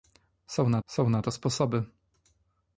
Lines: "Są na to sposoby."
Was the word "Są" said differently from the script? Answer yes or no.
no